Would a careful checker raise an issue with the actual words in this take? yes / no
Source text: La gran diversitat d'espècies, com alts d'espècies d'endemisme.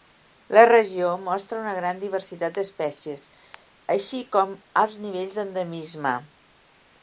yes